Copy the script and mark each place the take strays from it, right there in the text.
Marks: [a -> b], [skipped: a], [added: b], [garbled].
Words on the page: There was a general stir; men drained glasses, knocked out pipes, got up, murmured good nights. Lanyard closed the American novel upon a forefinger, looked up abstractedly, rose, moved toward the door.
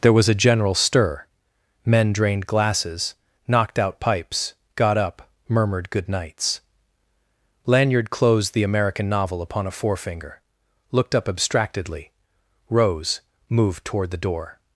There was a general stir; men drained glasses, knocked out pipes, got up, murmured good nights. Lanyard closed the American novel upon a forefinger, looked up abstractedly, rose, moved toward the door.